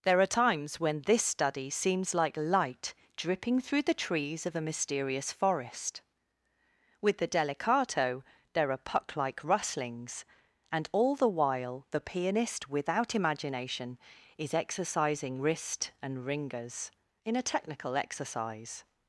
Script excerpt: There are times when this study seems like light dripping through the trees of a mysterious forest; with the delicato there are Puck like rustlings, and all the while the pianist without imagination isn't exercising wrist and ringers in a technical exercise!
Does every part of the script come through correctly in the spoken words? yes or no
no